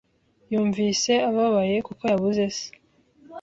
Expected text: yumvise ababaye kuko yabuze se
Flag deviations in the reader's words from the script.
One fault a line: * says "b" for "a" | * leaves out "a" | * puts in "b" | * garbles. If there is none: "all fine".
all fine